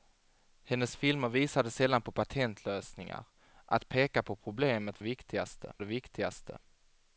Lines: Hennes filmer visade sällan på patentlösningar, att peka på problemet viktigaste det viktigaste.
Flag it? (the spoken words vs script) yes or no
no